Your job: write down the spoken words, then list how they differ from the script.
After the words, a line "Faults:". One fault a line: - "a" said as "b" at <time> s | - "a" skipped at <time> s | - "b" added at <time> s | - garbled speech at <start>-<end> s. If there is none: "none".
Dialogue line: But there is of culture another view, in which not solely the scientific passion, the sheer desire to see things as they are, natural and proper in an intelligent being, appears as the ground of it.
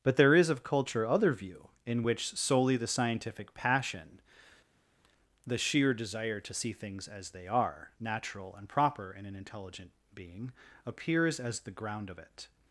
But there is of culture other view, in which solely the scientific passion, the sheer desire to see things as they are, natural and proper in an intelligent being, appears as the ground of it.
Faults:
- "another" said as "other" at 1.1 s
- "not" skipped at 2.4 s